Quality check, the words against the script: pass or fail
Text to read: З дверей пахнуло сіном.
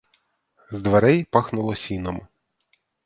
pass